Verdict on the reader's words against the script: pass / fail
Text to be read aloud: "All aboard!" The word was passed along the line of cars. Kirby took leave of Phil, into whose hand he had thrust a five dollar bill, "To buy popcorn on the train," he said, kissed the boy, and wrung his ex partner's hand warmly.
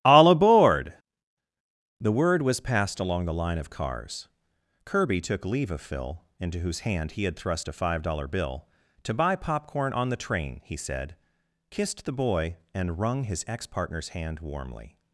pass